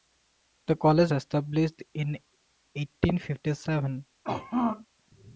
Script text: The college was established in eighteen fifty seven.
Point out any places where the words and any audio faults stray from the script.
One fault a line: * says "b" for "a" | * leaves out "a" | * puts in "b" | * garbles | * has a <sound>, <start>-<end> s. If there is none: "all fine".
* leaves out "was"
* has a throat clearing, 4.2-4.9 s